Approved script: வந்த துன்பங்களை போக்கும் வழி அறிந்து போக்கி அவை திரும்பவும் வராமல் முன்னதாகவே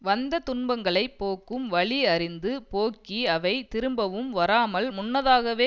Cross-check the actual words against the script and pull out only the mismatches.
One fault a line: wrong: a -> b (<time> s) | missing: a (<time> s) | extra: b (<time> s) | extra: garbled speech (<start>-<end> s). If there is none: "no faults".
no faults